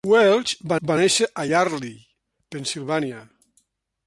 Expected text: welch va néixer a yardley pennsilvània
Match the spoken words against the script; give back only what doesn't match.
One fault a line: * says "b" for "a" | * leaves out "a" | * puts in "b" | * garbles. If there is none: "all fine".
* puts in "va"